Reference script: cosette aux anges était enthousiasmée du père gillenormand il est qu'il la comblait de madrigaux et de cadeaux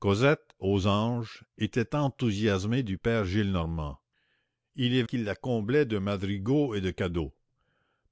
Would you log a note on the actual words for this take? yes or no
no